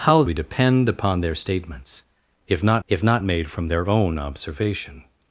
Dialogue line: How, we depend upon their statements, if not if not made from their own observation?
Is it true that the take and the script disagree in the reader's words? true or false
false